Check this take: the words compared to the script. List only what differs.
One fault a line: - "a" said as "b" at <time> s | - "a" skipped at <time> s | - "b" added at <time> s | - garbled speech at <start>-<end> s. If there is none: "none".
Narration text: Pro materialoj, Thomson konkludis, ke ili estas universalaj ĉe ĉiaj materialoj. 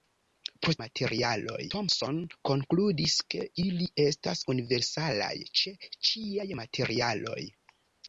none